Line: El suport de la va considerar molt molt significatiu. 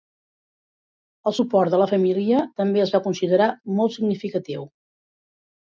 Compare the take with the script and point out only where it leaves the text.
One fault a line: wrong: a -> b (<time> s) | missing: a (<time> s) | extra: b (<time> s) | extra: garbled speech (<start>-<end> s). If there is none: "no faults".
extra: família també es (1.9 s)
missing: molt (4.0 s)